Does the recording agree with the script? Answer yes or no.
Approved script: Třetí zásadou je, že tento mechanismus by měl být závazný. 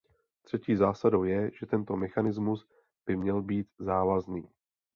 yes